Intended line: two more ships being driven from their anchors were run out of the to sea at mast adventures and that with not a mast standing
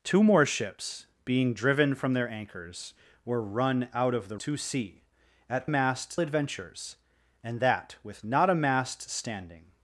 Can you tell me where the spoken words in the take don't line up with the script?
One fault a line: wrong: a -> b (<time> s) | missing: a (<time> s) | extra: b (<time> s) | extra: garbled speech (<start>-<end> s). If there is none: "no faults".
no faults